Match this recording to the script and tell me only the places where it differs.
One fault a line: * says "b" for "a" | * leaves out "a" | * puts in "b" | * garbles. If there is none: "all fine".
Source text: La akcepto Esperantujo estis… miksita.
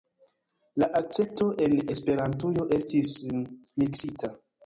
* puts in "en"